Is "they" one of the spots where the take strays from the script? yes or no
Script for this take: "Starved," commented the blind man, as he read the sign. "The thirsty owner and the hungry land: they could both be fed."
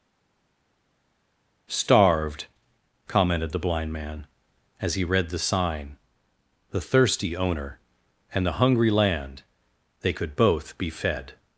no